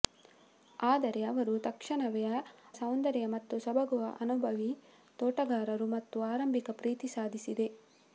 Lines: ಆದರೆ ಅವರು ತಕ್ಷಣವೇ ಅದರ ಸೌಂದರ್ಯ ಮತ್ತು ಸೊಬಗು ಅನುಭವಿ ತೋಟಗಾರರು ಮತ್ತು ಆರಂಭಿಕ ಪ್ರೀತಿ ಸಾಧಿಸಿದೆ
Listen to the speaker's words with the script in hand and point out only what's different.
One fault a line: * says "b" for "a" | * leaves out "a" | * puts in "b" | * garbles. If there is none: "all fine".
* leaves out "ಅದರ"